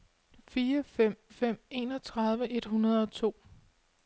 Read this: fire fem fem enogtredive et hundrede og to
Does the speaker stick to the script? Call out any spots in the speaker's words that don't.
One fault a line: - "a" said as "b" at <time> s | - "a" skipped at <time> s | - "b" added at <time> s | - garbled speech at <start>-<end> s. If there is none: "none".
none